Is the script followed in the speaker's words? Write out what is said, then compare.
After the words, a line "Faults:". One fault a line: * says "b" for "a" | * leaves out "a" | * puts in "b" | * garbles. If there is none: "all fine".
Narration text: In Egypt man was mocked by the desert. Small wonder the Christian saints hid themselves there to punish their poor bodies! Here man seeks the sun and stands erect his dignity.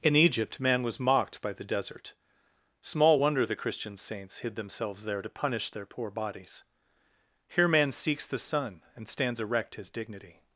In Egypt man was mocked by the desert. Small wonder the Christian saints hid themselves there to punish their poor bodies! Here man seeks the sun and stands erect his dignity.
Faults:
all fine